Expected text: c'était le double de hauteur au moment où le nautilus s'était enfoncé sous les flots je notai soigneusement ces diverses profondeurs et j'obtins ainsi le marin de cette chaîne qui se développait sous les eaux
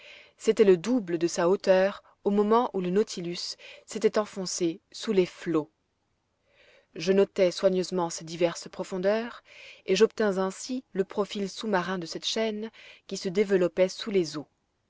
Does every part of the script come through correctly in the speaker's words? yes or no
no